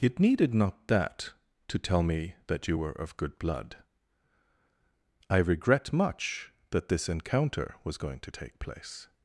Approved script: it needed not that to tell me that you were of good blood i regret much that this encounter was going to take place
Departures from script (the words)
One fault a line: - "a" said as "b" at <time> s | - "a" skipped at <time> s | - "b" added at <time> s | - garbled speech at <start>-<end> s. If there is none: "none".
none